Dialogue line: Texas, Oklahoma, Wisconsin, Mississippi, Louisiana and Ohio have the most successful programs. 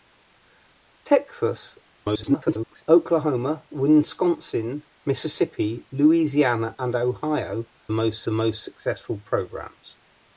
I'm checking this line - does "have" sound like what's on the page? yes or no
no